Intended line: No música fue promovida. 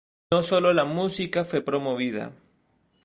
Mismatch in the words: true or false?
true